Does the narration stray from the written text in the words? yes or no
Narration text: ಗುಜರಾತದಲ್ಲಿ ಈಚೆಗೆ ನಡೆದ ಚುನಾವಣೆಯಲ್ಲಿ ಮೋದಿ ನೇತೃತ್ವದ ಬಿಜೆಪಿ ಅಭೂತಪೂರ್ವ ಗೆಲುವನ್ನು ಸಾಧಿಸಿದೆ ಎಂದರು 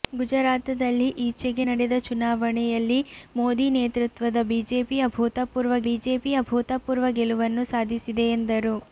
yes